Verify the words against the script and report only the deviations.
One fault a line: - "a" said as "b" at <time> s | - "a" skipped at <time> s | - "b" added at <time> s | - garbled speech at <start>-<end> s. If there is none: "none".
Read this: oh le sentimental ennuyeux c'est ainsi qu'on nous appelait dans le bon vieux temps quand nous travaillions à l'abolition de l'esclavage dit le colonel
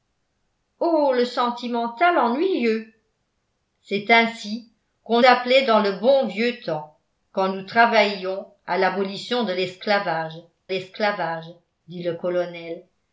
- "nous" skipped at 5.2 s
- "l'esclavage" added at 10.7 s